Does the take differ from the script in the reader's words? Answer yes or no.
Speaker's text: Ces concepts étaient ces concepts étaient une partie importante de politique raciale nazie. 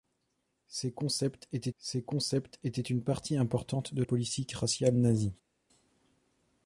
no